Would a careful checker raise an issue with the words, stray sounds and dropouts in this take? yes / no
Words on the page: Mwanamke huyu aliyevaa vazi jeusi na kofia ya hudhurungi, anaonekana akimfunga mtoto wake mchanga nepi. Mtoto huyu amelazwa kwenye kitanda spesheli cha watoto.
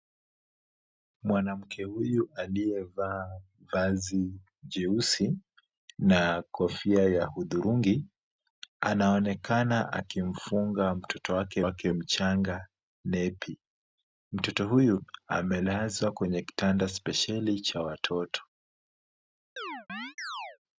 yes